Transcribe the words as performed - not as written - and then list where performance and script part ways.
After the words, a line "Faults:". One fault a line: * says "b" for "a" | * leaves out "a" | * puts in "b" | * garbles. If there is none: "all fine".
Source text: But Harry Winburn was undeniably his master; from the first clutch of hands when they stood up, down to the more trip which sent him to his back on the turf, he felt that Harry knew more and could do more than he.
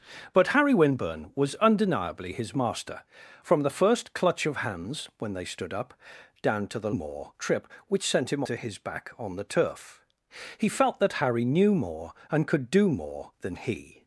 But Harry Winburn was undeniably his master; from the first clutch of hands when they stood up, down to the more trip which sent him to his back on the turf, he felt that Harry knew more and could do more than he.
Faults:
all fine